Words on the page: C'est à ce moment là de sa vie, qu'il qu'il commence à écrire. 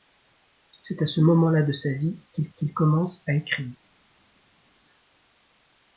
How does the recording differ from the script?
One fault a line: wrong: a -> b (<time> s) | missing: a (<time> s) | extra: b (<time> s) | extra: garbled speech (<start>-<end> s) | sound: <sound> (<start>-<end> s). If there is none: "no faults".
no faults